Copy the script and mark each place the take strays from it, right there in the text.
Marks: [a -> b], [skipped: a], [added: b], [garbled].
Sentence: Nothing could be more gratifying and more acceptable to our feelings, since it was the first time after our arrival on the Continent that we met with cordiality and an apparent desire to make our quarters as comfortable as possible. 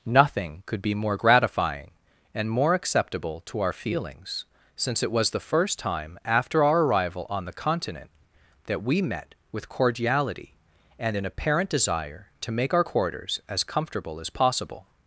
Nothing could be more gratifying and more acceptable to our feelings, since it was the first time after our arrival on the Continent that we met with cordiality and an apparent desire to make our quarters as comfortable as possible.